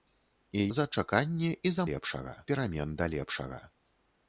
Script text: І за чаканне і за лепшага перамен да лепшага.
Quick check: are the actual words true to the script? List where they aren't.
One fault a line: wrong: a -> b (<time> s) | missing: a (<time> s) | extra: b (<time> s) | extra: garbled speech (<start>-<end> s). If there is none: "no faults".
no faults